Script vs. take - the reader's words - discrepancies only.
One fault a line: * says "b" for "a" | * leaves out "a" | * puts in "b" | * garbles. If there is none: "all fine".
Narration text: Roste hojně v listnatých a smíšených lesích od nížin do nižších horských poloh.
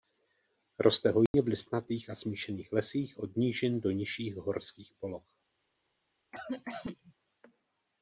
all fine